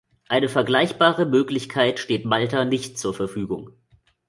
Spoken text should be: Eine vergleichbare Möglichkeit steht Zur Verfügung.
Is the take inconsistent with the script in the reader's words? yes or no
yes